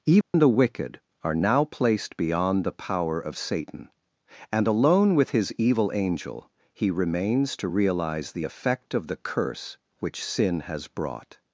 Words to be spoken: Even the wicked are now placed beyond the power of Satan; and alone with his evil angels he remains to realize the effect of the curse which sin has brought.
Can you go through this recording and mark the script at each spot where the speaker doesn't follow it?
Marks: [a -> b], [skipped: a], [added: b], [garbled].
Even the wicked are now placed beyond the power of Satan; and alone with his evil [angels -> angel] he remains to realize the effect of the curse which sin has brought.